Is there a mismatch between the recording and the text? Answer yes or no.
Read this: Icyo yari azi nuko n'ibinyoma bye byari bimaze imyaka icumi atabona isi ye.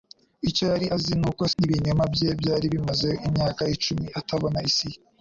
no